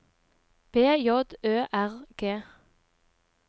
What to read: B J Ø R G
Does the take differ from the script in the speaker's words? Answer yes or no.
no